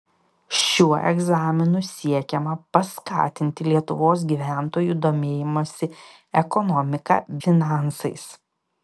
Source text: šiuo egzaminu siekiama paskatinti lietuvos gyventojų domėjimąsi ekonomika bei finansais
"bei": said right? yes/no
no